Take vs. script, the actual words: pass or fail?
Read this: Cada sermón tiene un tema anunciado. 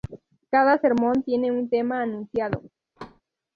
pass